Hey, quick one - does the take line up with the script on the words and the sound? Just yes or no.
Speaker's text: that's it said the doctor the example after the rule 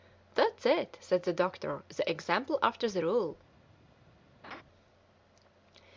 no